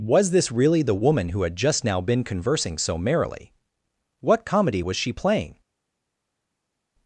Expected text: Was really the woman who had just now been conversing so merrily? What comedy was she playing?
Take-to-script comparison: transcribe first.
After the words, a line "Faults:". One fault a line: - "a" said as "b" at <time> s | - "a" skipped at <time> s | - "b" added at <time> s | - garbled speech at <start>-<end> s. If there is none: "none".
Was this really the woman who had just now been conversing so merrily? What comedy was she playing?
Faults:
- "this" added at 0.3 s